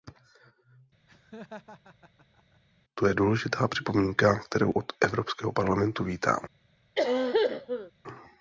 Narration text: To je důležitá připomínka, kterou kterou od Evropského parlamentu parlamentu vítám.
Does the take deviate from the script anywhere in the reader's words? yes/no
yes